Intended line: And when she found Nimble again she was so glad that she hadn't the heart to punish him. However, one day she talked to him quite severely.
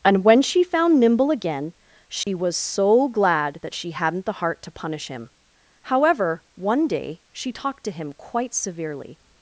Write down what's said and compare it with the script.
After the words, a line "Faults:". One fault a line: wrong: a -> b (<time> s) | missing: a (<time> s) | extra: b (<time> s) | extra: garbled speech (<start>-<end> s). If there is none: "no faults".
And when she found Nimble again she was so glad that she hadn't the heart to punish him. However, one day she talked to him quite severely.
Faults:
no faults